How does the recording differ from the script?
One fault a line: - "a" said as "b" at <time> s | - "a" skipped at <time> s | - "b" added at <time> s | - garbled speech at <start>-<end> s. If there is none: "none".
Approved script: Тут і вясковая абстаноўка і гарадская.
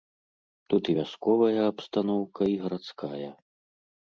none